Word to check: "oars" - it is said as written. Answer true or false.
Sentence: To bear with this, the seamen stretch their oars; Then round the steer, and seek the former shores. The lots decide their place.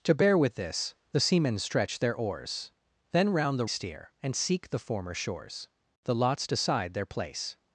true